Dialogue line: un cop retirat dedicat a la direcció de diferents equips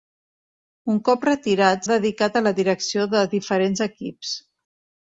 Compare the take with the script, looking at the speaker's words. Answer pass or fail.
pass